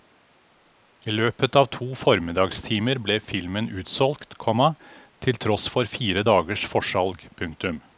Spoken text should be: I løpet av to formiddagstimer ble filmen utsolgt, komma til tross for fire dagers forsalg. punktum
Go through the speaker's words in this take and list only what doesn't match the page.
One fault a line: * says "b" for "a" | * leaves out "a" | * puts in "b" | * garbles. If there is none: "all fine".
all fine